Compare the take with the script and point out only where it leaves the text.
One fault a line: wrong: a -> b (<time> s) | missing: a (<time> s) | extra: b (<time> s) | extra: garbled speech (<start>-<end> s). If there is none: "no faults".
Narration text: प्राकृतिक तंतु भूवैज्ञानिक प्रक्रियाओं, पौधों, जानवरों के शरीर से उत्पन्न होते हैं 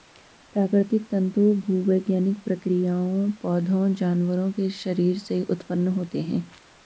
no faults